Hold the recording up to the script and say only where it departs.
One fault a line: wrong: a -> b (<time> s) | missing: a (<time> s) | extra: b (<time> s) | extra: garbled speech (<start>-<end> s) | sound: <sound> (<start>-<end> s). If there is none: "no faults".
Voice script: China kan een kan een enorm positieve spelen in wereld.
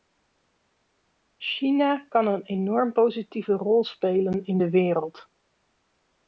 missing: kan een (2.4 s)
extra: rol (3.5 s)
extra: de (4.6 s)